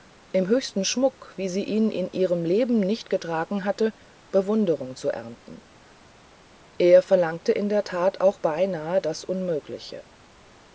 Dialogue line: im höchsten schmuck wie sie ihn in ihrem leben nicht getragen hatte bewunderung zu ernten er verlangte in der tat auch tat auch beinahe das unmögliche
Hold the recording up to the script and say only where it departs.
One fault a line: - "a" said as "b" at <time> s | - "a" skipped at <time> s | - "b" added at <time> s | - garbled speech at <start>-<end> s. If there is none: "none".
- "tat auch" skipped at 8.4 s